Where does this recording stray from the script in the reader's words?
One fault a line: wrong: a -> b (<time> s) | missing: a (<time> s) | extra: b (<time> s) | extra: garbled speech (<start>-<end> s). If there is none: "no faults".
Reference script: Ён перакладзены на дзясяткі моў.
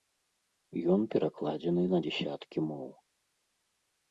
no faults